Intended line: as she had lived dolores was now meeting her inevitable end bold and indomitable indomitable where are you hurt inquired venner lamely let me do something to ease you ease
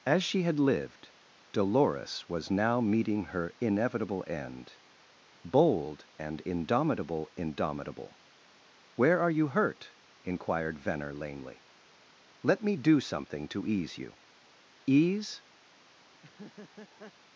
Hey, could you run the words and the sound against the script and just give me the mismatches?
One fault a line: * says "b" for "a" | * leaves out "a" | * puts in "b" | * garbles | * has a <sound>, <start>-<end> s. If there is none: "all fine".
* has a laugh, 16.1-17.1 s